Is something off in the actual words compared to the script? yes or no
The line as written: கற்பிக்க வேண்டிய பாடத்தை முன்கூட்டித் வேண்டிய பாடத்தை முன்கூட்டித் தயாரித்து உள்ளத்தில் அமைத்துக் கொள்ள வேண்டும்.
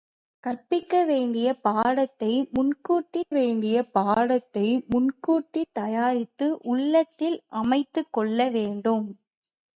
no